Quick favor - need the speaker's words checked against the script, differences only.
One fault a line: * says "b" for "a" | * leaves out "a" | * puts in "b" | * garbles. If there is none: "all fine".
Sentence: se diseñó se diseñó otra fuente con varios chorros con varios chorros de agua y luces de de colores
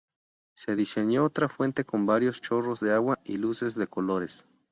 * leaves out "se diseñó"
* leaves out "con varios chorros"
* leaves out "de"